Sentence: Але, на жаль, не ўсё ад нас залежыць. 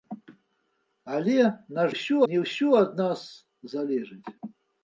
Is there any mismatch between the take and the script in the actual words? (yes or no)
yes